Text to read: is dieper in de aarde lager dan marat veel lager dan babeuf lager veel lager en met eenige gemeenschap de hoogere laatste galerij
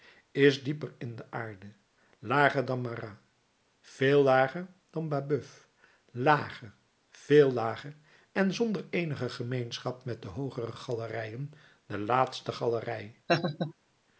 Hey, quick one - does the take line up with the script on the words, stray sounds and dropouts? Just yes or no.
no